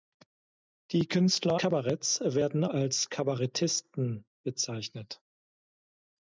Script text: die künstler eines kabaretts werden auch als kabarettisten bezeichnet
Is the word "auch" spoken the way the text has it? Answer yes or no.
no